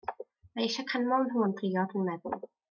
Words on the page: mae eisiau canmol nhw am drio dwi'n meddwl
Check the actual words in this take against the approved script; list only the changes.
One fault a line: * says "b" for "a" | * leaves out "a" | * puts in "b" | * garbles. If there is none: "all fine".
all fine